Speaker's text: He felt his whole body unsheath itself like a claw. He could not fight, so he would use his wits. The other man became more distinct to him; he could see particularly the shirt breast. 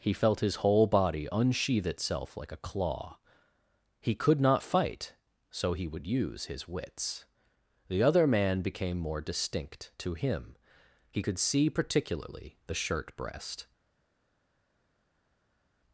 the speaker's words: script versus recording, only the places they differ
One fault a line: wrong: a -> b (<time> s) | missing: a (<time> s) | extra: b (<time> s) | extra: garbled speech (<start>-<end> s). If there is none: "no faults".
no faults